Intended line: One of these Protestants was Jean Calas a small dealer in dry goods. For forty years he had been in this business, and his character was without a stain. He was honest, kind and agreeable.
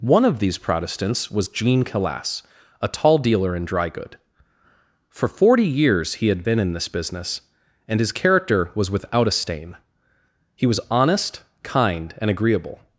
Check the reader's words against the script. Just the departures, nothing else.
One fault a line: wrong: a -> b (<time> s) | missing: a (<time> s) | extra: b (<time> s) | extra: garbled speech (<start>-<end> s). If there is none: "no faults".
wrong: small -> tall (2.9 s)
wrong: goods -> good (3.9 s)